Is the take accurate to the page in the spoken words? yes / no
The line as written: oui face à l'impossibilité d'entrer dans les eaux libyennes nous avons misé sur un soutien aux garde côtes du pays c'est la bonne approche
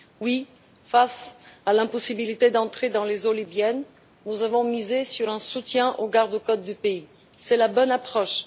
yes